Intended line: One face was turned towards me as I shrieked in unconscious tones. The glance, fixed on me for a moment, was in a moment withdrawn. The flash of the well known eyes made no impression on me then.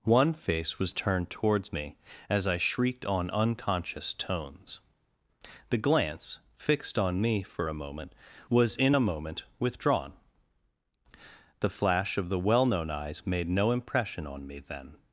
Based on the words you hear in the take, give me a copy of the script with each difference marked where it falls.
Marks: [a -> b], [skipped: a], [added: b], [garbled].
One face was turned towards me as I shrieked [in -> on] unconscious tones. The glance, fixed on me for a moment, was in a moment withdrawn. The flash of the well known eyes made no impression on me then.